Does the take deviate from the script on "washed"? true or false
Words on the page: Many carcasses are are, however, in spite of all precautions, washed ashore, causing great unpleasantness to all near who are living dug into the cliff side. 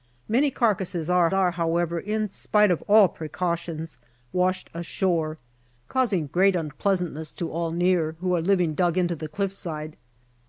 false